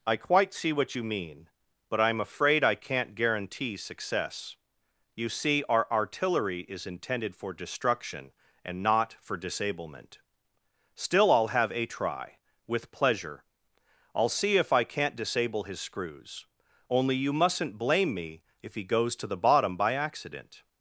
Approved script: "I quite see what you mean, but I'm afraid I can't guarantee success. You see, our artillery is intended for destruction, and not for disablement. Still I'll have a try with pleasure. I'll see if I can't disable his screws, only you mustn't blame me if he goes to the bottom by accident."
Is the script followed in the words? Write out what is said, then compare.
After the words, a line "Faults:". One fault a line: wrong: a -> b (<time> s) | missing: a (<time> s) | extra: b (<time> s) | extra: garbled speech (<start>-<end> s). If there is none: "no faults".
"I quite see what you mean, but I'm afraid I can't guarantee success. You see, our artillery is intended for destruction, and not for disablement. Still I'll have a try with pleasure. I'll see if I can't disable his screws, only you mustn't blame me if he goes to the bottom by accident."
Faults:
no faults